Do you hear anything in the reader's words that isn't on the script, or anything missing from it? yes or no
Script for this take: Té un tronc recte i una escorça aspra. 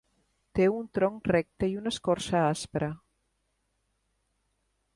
no